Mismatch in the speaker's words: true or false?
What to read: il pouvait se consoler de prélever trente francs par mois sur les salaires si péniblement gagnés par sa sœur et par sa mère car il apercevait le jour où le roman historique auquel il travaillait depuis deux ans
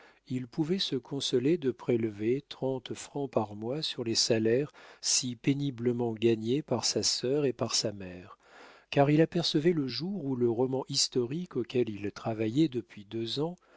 false